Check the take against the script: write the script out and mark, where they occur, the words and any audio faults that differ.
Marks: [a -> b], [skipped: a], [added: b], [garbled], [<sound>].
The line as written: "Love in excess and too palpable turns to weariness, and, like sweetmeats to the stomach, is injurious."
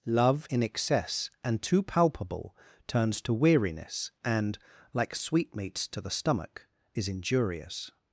"Love in excess and too palpable turns to weariness, and, like sweetmeats to the stomach, is injurious."